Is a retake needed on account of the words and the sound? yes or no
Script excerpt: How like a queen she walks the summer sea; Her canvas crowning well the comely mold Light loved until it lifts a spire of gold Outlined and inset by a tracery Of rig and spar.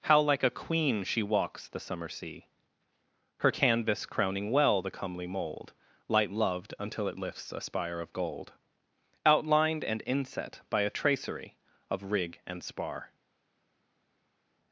no